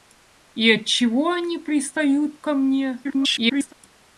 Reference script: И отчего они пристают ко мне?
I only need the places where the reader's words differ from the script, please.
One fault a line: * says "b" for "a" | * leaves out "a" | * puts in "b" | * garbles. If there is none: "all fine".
* garbles